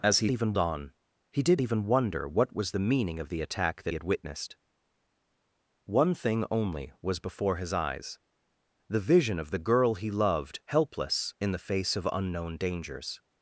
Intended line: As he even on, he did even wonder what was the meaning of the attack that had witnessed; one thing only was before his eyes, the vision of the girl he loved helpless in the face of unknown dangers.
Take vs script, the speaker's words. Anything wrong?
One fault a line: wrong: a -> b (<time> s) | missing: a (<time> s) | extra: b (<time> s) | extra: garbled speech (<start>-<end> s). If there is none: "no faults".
no faults